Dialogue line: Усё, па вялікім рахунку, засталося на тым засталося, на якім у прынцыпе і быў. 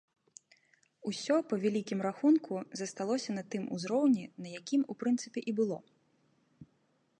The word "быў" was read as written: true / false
false